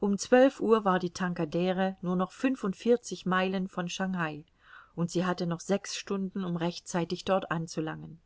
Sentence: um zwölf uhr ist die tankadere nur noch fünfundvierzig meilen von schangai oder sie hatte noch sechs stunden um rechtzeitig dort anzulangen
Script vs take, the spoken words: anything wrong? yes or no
yes